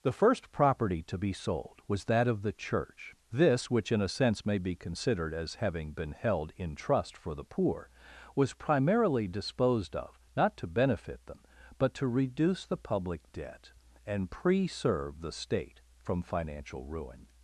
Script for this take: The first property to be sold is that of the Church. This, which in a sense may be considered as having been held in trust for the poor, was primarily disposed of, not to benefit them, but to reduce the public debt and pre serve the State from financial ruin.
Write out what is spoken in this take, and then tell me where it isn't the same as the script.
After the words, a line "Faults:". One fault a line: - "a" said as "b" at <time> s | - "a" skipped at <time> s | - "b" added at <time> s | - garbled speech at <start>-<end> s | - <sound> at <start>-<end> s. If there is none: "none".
The first property to be sold was that of the Church. This, which in a sense may be considered as having been held in trust for the poor, was primarily disposed of, not to benefit them, but to reduce the public debt and pre serve the State from financial ruin.
Faults:
- "is" said as "was" at 1.9 s